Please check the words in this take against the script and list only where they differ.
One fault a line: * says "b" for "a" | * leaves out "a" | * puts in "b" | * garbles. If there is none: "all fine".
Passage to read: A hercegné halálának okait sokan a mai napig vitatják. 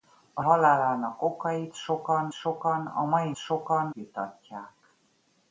* leaves out "hercegné"
* puts in "sokan"
* says "sokan" for "napig"